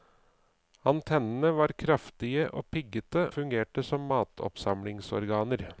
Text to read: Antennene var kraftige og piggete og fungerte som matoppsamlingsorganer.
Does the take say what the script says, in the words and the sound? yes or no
no